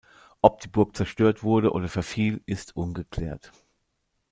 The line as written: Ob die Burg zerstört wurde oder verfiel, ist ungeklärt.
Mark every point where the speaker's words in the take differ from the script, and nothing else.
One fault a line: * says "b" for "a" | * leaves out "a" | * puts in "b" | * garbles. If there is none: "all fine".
all fine